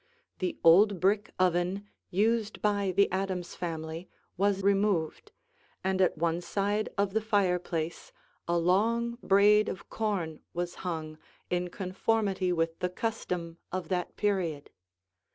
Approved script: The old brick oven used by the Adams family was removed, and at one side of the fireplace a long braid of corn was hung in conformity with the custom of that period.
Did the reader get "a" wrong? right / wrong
right